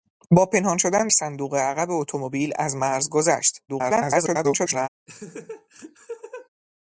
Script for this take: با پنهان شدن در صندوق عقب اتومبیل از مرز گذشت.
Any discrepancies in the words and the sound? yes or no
yes